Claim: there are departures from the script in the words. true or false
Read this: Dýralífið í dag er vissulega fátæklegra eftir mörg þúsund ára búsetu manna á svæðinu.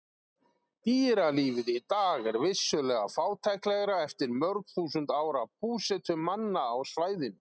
false